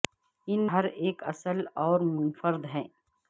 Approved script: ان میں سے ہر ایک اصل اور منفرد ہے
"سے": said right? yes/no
no